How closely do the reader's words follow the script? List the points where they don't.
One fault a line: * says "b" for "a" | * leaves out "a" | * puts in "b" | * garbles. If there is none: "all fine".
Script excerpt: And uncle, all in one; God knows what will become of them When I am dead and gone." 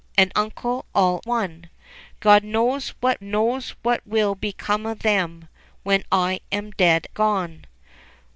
* leaves out "in"
* puts in "knows what"
* leaves out "and"